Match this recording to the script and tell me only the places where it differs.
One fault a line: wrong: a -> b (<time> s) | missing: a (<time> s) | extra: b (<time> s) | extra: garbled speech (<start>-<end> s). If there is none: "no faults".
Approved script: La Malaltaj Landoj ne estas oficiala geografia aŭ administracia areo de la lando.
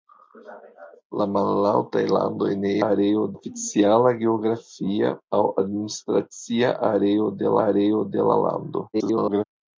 wrong: estas -> areo (2.9 s)
extra: areo de (7.7 s)
extra: garbled speech (8.9-9.4 s)